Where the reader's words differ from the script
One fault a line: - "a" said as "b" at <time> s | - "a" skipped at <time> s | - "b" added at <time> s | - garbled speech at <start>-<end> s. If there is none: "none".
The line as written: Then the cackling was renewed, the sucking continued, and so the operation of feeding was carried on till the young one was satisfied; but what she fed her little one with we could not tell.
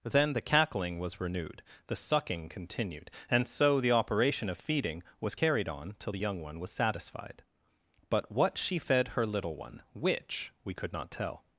- "with" said as "which" at 9.9 s